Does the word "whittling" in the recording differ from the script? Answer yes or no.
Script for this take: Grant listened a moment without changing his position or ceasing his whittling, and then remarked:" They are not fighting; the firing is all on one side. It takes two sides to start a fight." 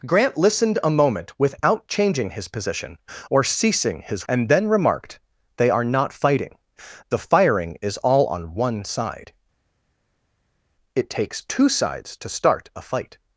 yes